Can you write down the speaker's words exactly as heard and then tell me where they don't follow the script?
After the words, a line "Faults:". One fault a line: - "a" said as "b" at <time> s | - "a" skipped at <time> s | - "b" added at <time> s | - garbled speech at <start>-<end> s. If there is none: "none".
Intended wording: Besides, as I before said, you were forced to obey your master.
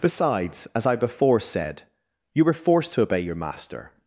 Besides, as I before said, you were forced to obey your master.
Faults:
none